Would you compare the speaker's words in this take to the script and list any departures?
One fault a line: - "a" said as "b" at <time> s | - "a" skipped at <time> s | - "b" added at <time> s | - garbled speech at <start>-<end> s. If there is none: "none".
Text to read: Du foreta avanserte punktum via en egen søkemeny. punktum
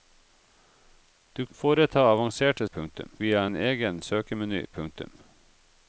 none